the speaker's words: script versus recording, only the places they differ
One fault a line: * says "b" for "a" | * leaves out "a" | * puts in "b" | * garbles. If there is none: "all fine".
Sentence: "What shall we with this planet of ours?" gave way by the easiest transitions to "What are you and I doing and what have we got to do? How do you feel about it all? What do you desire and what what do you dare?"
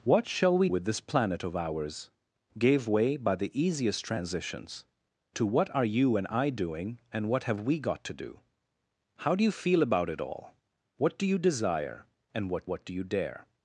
all fine